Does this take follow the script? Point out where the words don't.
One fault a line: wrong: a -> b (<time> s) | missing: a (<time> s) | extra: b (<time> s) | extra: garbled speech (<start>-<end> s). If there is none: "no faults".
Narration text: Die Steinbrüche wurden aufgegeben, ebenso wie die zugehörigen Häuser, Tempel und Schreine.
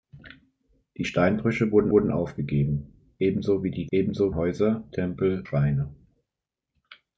extra: wurden (1.9 s)
wrong: zugehörigen -> ebenso (3.9 s)
missing: und (5.4 s)